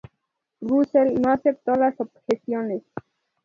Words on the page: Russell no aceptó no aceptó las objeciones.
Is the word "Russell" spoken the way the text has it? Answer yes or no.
yes